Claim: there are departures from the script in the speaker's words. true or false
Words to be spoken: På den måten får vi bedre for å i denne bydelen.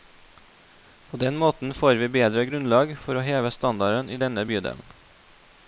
true